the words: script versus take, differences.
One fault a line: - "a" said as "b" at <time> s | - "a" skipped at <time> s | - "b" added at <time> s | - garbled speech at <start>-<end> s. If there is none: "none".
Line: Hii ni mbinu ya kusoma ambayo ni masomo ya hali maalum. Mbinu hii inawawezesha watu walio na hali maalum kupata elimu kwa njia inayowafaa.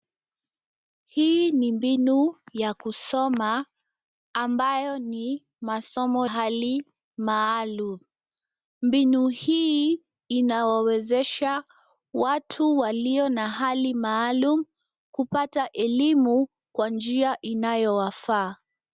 - "ya" skipped at 6.3 s